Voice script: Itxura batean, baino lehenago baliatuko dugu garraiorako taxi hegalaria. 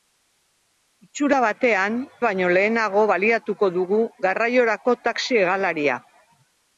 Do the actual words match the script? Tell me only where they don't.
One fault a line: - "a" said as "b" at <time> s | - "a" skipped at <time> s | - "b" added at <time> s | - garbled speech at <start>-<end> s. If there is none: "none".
none